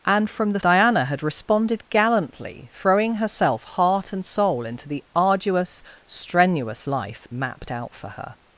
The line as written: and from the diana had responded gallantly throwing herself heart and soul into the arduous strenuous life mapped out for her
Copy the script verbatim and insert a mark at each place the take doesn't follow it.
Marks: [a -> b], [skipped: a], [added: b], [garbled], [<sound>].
and from the diana had responded gallantly throwing herself heart and soul into the arduous strenuous life mapped out for her